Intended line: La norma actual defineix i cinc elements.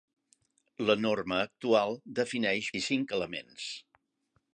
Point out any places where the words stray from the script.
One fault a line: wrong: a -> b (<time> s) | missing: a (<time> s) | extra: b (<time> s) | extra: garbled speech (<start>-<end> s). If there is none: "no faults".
no faults